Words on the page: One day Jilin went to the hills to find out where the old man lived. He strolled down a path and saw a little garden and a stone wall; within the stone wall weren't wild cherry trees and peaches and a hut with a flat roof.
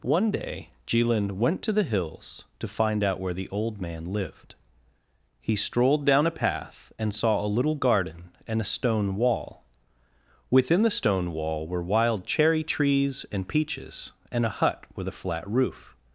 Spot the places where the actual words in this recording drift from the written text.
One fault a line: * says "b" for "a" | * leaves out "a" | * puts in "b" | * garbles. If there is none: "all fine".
* says "were" for "weren't"